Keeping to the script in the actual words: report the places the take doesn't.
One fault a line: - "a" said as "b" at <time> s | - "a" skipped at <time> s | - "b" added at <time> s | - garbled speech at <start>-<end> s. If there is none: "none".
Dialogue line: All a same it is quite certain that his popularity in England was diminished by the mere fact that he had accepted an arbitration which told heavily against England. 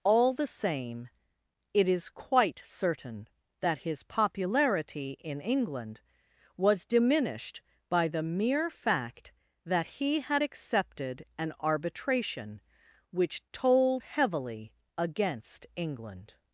- "a" said as "the" at 0.3 s